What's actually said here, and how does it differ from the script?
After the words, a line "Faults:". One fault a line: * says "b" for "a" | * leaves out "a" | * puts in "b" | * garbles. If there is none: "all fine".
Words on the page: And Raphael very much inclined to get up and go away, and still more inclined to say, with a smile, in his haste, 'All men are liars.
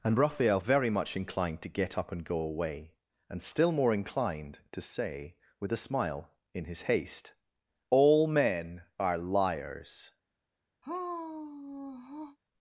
And Raphael very much inclined to get up and go away, and still more inclined to say, with a smile, in his haste, 'All men are liars.
Faults:
all fine